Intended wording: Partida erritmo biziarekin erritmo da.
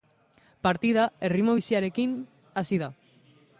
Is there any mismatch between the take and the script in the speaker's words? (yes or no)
yes